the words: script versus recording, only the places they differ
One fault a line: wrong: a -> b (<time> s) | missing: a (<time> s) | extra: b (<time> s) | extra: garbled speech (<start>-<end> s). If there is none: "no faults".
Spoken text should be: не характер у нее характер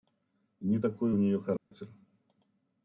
wrong: характер -> такой (0.8 s)